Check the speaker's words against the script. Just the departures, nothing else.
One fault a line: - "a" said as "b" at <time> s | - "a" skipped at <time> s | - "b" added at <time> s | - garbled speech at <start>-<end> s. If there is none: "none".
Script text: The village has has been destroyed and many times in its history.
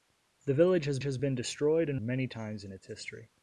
none